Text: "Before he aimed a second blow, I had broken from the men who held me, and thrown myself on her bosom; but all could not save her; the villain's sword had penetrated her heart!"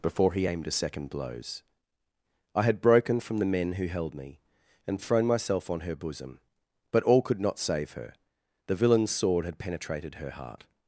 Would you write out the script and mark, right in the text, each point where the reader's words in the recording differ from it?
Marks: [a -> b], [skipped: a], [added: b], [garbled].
"Before he aimed a second [blow, -> blows] I had broken from the men who held me, and thrown myself on her bosom; but all could not save her; the villain's sword had penetrated her heart!"